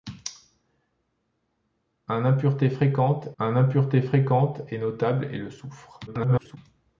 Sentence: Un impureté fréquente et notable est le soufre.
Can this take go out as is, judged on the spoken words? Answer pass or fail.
fail